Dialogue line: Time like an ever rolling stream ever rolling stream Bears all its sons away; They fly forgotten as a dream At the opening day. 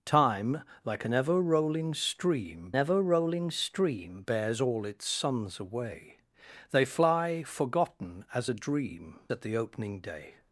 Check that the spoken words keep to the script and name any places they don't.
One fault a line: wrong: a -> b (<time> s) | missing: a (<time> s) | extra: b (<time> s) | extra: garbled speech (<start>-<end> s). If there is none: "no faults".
no faults